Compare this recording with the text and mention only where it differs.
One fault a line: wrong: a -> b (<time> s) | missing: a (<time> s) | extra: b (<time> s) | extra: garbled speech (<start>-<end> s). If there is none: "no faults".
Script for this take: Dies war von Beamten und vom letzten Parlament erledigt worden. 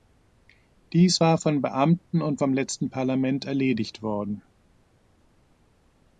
no faults